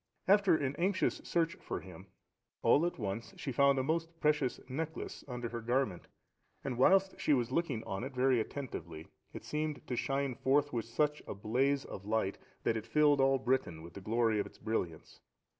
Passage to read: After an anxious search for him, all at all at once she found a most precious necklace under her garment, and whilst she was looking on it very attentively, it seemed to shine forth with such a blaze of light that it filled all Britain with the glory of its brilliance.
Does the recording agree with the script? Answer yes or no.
no